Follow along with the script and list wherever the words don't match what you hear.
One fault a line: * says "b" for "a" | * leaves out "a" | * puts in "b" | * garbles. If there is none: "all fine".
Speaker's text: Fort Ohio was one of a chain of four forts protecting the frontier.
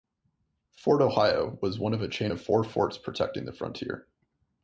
all fine